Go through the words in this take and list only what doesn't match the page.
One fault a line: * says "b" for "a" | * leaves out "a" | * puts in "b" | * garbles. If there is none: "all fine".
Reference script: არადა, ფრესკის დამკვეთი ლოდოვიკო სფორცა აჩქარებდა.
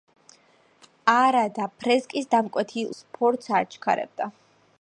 * leaves out "ლოდოვიკო"